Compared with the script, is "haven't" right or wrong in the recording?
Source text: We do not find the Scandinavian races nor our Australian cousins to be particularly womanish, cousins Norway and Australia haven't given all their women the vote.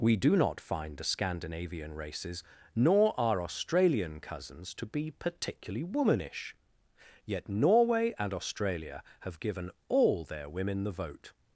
wrong